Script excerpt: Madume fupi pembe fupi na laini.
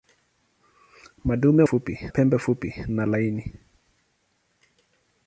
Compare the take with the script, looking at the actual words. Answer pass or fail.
pass